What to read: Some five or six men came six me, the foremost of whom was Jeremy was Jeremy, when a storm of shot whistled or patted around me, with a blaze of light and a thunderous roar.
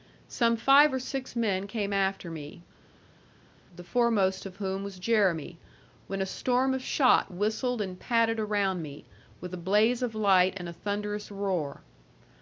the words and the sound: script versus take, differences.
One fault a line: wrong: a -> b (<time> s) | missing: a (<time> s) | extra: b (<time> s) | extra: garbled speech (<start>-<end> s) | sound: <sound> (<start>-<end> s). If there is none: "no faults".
wrong: six -> after (1.9 s)
missing: was Jeremy (5.6 s)
wrong: or -> and (7.8 s)